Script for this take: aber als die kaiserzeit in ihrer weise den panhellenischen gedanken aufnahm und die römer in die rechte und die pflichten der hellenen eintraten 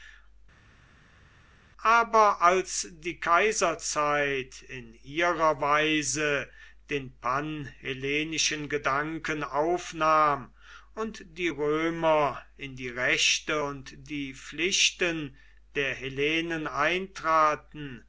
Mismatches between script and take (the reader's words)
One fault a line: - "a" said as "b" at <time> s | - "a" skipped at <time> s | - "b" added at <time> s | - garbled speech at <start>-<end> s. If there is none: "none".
none